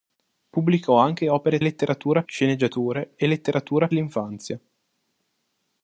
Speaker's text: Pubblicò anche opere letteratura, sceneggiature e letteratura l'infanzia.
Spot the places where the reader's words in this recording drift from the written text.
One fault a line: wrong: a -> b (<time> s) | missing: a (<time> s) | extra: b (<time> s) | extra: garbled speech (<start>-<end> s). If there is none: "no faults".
no faults